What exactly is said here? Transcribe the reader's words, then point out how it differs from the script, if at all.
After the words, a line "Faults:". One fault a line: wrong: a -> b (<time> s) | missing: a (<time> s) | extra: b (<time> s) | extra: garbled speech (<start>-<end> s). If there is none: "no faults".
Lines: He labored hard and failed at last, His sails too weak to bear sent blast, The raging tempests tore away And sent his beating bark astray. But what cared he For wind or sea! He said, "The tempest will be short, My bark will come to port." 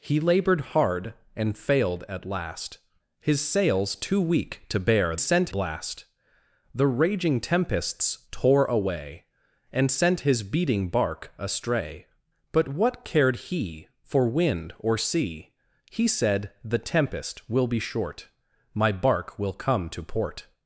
He labored hard and failed at last, His sails too weak to bear sent blast, The raging tempests tore away And sent his beating bark astray. But what cared he For wind or sea! He said, "The tempest will be short, My bark will come to port."
Faults:
no faults